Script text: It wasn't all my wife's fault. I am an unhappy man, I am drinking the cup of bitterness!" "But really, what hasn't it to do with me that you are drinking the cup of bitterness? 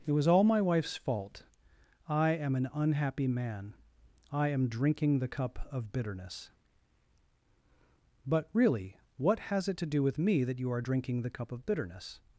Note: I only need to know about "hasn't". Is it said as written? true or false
false